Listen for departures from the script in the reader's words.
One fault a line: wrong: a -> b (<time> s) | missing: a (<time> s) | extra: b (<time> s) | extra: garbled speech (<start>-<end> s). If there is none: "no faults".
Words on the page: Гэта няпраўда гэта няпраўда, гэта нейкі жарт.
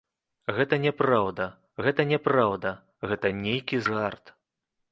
no faults